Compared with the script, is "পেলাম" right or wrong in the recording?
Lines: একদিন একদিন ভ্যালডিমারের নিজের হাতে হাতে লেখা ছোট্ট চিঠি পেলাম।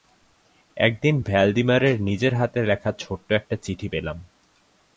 right